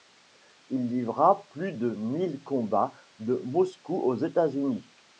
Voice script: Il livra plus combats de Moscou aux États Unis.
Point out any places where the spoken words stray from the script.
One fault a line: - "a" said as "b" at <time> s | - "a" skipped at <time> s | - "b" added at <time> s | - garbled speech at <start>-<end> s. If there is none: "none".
- "de mille" added at 1.7 s